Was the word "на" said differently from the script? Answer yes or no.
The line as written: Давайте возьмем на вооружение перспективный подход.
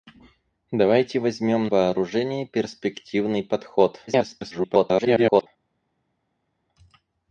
yes